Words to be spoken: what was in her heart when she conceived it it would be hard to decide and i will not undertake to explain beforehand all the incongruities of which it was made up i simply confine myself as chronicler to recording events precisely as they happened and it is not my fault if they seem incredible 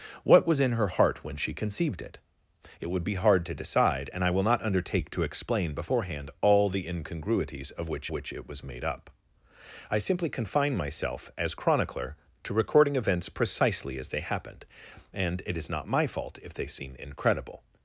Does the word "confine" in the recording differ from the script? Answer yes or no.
no